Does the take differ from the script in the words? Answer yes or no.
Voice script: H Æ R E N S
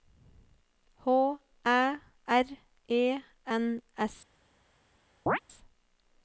no